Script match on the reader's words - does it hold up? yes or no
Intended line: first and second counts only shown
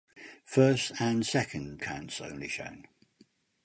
yes